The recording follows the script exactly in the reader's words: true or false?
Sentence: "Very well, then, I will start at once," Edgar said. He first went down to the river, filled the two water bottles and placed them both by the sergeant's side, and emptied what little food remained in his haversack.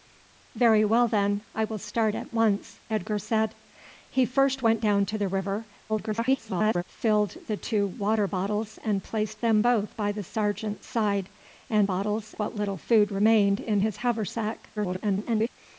false